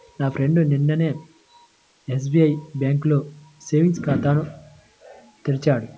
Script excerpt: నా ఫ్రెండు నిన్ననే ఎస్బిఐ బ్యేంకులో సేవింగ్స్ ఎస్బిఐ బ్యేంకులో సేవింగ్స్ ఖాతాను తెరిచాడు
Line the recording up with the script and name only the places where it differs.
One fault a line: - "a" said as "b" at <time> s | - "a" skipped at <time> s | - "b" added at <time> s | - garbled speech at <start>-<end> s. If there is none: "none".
- "ఎస్బిఐ బ్యేంకులో సేవింగ్స్" skipped at 4.0 s